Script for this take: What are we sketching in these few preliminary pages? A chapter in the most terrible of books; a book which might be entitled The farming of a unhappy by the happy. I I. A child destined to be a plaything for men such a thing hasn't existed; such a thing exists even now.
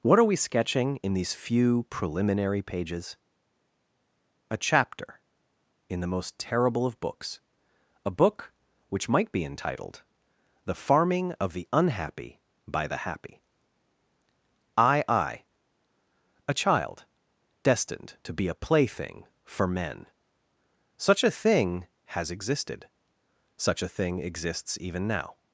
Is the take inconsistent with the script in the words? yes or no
yes